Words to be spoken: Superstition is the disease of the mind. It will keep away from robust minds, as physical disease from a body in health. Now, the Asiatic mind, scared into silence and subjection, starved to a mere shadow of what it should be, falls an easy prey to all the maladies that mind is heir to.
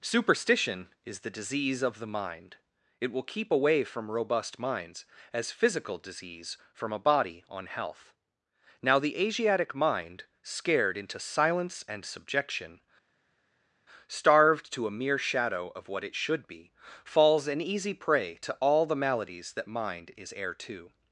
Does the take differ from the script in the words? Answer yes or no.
yes